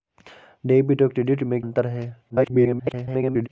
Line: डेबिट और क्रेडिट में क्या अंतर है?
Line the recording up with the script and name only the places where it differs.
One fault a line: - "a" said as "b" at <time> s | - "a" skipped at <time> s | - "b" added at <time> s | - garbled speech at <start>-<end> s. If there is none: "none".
- "क्या" skipped at 1.6 s
- garbled speech at 2.3-3.5 s